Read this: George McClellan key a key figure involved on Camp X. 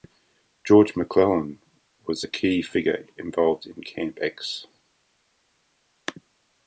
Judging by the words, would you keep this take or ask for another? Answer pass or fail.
fail